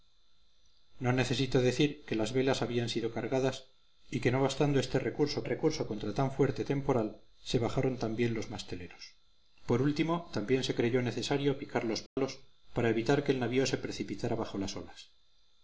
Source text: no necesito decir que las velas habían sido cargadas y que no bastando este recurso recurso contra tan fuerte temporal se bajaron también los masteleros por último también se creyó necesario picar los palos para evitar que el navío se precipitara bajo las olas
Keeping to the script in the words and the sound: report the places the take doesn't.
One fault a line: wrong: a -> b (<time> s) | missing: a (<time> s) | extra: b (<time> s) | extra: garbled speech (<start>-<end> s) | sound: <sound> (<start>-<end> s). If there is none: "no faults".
sound: dropout (12.1-12.2 s)